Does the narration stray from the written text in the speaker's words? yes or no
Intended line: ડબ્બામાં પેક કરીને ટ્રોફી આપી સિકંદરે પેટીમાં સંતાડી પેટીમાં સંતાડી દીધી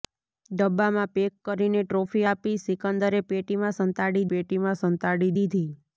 no